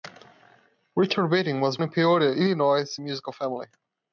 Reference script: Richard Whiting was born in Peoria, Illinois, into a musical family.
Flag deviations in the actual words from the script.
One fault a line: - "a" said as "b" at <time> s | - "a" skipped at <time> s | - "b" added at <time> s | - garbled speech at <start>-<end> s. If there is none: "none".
- "born" skipped at 1.8 s
- "into" skipped at 3.0 s